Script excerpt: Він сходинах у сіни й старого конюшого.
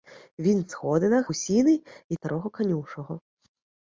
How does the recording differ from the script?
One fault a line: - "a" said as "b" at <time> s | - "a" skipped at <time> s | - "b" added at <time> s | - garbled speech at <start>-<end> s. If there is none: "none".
none